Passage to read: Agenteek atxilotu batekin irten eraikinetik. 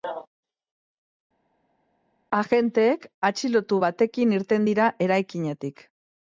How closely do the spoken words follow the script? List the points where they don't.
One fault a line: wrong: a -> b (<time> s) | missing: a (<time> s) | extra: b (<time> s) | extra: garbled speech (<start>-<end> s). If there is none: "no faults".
extra: dira (4.7 s)